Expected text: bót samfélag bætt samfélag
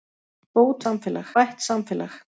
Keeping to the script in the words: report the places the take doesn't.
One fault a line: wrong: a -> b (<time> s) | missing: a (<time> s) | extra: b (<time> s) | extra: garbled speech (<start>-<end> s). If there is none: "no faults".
no faults